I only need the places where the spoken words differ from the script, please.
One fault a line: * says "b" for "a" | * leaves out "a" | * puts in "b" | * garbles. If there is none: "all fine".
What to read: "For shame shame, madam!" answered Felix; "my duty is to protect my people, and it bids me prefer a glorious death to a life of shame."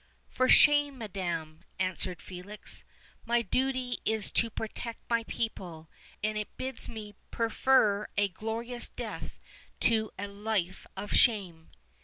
* leaves out "shame"